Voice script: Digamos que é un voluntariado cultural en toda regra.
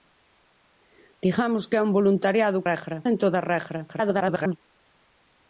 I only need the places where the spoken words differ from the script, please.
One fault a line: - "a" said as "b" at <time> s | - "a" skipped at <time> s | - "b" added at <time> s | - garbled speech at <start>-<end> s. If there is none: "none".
- "cultural" said as "regra" at 2.7 s
- garbled speech at 3.9-4.6 s